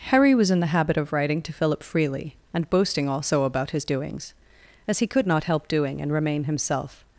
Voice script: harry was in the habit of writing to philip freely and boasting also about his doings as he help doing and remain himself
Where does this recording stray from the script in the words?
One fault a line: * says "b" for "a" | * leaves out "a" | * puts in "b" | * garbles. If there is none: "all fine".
* puts in "could not"